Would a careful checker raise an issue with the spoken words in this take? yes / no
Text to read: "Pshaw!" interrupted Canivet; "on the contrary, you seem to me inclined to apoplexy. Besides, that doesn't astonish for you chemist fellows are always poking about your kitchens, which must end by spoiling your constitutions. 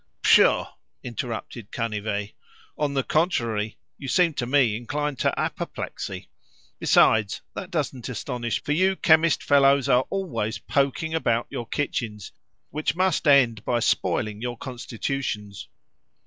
no